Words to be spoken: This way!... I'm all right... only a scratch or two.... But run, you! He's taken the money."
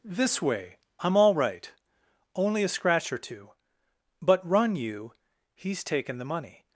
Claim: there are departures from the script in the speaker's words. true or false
false